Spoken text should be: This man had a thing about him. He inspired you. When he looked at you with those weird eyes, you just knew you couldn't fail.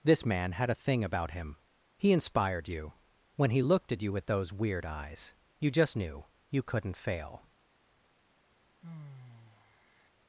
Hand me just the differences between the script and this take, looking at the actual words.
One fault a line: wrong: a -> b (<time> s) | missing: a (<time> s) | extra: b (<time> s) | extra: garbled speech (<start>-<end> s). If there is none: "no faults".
no faults